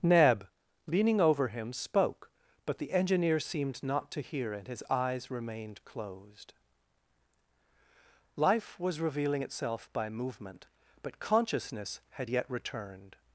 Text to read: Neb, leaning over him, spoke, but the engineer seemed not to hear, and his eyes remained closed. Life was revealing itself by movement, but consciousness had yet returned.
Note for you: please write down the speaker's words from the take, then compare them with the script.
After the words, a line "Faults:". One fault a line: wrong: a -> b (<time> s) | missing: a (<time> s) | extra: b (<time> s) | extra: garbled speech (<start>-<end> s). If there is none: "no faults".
Neb, leaning over him, spoke, but the engineer seemed not to hear, and his eyes remained closed. Life was revealing itself by movement, but consciousness had yet returned.
Faults:
no faults